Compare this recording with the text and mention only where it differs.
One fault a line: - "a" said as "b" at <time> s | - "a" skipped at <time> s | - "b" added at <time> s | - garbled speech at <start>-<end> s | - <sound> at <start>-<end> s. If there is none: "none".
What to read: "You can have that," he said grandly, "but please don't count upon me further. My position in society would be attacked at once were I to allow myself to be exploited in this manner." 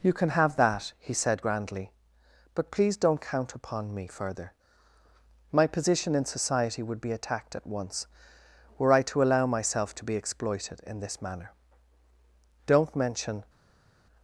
- "Don't mention" added at 12.7 s